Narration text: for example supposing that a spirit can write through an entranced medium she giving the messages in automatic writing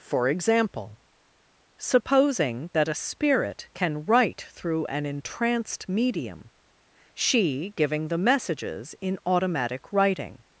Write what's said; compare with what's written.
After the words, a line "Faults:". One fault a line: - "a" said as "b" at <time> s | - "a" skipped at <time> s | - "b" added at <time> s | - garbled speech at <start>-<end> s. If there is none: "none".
for example supposing that a spirit can write through an entranced medium she giving the messages in automatic writing
Faults:
none